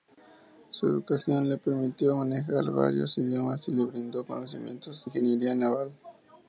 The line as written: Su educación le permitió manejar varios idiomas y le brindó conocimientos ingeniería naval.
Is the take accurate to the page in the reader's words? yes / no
yes